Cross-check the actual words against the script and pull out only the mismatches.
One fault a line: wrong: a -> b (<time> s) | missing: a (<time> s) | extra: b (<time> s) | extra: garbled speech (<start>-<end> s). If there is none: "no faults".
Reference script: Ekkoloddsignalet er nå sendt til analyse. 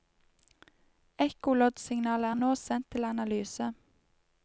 no faults